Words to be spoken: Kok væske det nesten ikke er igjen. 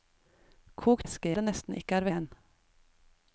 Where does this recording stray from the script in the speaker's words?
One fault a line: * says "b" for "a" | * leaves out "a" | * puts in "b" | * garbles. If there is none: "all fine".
all fine